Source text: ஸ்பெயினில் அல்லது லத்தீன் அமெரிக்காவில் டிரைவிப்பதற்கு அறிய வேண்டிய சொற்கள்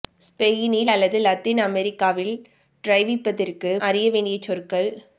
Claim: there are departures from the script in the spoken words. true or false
false